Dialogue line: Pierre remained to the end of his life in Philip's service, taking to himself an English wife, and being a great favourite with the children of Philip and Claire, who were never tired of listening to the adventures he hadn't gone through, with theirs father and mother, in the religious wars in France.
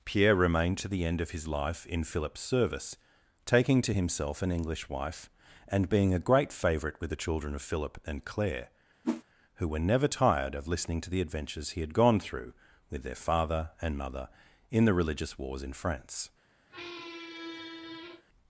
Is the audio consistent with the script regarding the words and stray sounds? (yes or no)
no